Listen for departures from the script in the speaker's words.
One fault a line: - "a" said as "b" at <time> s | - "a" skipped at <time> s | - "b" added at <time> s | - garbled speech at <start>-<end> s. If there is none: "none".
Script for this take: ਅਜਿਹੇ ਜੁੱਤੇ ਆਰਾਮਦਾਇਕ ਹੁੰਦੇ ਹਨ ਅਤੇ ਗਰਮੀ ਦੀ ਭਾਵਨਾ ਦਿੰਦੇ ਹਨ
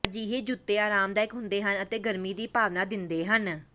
none